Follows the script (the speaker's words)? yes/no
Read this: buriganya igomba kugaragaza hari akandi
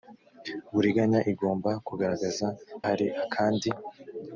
yes